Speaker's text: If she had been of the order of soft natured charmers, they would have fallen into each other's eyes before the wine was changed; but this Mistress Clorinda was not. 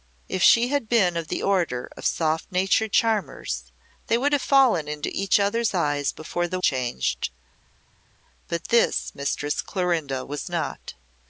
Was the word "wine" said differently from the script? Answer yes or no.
yes